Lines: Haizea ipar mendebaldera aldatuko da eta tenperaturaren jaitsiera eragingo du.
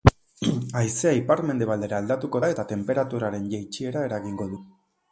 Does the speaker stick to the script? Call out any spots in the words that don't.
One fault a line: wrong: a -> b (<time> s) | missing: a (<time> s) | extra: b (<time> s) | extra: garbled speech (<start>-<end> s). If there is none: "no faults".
no faults